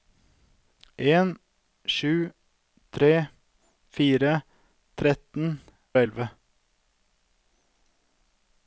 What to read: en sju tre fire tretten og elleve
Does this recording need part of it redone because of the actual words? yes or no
no